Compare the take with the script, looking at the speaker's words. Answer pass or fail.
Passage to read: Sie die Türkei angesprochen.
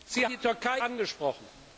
pass